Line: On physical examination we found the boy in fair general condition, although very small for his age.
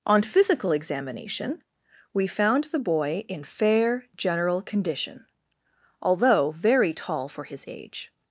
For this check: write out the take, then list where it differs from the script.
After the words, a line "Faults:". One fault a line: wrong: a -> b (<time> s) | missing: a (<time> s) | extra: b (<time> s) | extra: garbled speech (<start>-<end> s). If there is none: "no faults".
On physical examination we found the boy in fair general condition, although very tall for his age.
Faults:
wrong: small -> tall (6.9 s)